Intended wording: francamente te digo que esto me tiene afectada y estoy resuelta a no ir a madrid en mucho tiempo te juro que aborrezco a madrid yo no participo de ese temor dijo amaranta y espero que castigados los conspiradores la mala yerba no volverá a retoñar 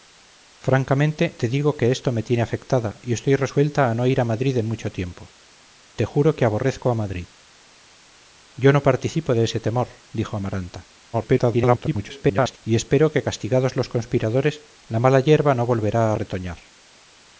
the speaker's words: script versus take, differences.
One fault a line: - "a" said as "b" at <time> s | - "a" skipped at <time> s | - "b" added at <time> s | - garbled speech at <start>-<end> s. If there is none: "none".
- garbled speech at 11.1-12.6 s